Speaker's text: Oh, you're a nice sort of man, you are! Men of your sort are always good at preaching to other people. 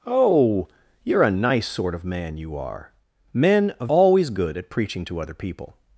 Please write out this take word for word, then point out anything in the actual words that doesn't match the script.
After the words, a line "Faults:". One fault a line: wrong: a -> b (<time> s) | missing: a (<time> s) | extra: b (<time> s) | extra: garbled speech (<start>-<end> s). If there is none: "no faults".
Oh, you're a nice sort of man, you are! Men of always good at preaching to other people.
Faults:
missing: your sort are (3.9 s)